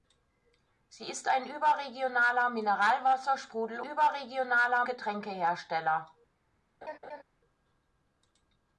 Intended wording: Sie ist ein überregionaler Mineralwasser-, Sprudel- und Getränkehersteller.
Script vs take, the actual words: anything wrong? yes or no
yes